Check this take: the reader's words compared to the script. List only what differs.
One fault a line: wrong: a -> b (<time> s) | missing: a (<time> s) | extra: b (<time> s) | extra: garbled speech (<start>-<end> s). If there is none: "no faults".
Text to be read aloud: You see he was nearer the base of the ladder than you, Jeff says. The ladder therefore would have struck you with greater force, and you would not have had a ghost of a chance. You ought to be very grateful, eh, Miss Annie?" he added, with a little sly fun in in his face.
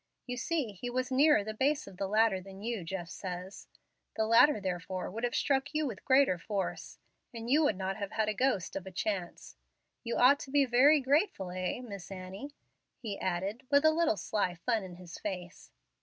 missing: in (14.9 s)